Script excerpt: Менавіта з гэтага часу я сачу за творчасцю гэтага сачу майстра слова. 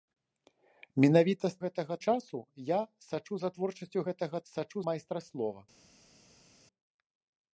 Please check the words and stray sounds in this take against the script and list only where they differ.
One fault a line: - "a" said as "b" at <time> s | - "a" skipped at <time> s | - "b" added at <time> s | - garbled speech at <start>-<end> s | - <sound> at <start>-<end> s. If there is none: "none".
none